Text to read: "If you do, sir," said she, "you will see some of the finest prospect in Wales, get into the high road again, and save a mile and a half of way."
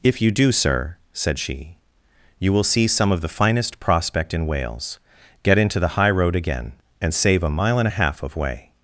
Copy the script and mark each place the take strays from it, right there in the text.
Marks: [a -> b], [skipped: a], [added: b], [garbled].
"If you do, sir," said she, "you will see some of the finest prospect in Wales, get into the high road again, and save a mile and a half of way."